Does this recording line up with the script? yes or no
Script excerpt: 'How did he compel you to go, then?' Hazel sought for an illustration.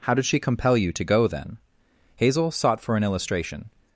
no